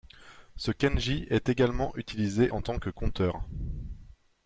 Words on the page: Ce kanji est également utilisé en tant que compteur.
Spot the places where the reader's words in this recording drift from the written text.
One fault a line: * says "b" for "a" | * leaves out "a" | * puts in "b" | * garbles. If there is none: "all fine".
all fine